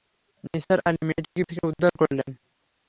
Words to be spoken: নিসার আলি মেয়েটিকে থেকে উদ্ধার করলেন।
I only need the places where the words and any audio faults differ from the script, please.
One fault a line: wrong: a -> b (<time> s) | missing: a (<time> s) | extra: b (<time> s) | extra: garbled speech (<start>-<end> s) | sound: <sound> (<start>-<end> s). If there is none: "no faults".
sound: dropout (1.2-1.4 s)